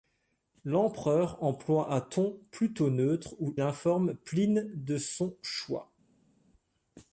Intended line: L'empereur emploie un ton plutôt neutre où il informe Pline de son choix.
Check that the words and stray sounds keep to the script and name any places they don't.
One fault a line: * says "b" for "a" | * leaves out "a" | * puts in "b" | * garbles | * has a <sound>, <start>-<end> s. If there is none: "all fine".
* leaves out "il"